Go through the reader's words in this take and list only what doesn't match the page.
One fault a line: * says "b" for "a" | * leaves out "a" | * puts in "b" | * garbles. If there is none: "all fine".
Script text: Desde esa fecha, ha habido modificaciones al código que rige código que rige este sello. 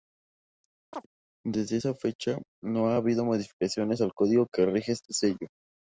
* puts in "no"
* leaves out "código que rige"